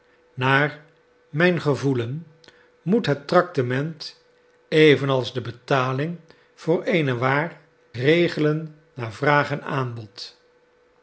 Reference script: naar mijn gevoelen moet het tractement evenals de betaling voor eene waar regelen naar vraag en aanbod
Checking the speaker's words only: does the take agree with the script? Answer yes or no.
yes